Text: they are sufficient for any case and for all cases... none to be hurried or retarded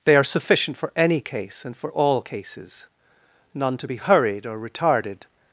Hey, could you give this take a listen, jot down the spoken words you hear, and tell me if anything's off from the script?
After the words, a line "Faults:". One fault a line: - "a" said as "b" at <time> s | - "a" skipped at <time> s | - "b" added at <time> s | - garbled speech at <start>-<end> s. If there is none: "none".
they are sufficient for any case and for all cases... none to be hurried or retarded
Faults:
none